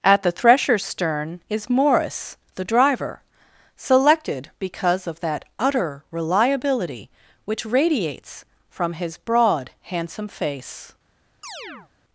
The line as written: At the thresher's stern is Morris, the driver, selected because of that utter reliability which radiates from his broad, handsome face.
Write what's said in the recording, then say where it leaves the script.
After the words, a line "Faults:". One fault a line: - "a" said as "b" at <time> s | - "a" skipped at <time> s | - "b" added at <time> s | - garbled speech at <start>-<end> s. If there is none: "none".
At the thresher's stern is Morris, the driver, selected because of that utter reliability which radiates from his broad, handsome face.
Faults:
none